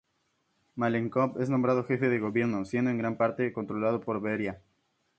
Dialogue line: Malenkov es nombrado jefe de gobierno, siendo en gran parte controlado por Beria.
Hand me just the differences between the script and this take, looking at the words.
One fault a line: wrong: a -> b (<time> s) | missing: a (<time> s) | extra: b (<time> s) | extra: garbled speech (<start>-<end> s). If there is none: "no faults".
no faults